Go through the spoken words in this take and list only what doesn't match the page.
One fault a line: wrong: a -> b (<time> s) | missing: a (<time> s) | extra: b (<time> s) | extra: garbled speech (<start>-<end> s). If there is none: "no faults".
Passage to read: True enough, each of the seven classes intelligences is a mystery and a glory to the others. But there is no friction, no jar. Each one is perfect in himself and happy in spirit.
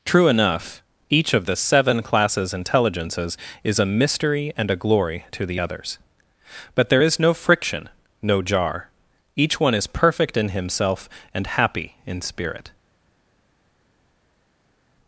no faults